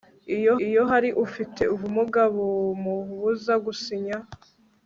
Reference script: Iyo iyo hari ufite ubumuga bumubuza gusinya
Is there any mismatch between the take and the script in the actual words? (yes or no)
no